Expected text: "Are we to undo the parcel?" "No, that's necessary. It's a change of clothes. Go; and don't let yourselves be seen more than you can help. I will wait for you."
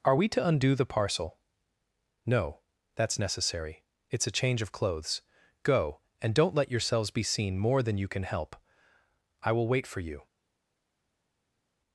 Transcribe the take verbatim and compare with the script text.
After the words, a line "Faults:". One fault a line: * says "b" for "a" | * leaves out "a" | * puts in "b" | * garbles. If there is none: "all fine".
"Are we to undo the parcel?" "No, that's necessary. It's a change of clothes. Go; and don't let yourselves be seen more than you can help. I will wait for you."
Faults:
all fine